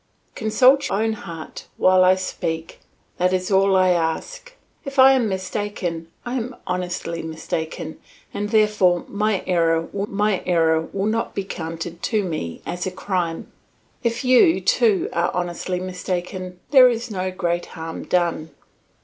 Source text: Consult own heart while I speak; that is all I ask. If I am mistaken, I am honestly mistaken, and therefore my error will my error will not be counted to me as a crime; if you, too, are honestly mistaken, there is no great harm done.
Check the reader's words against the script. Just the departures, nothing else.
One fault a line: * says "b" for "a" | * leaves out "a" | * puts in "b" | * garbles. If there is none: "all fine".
all fine